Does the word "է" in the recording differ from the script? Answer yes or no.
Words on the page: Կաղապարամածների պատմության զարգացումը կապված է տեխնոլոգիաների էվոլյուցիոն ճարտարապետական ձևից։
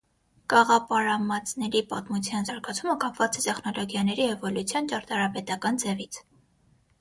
no